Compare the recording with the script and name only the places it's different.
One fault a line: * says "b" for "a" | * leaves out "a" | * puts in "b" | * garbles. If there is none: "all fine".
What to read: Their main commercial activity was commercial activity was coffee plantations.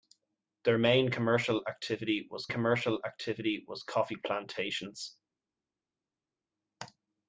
all fine